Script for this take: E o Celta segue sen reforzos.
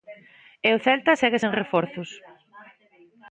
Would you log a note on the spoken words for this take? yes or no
no